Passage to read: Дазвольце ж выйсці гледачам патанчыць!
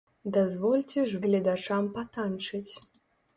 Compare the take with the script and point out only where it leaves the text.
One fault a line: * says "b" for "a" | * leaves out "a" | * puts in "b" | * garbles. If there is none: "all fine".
* leaves out "выйсці"